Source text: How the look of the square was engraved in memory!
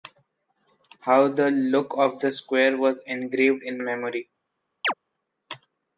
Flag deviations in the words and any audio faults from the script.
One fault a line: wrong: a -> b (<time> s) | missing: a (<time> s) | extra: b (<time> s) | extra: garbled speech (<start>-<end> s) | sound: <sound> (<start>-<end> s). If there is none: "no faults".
sound: chirp (4.8-4.9 s)